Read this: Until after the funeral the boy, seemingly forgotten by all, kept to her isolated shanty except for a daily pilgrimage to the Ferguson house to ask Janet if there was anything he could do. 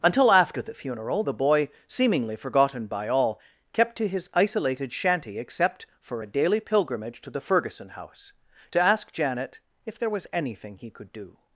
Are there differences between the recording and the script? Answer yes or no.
yes